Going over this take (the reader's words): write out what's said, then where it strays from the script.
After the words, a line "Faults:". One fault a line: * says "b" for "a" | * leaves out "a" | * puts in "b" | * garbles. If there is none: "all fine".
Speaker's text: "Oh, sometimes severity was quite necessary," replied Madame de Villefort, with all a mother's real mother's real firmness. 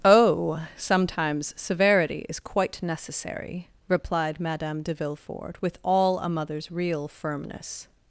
"Oh, sometimes severity is quite necessary," replied Madame de Villefort, with all a mother's real firmness.
Faults:
* says "is" for "was"
* leaves out "mother's real"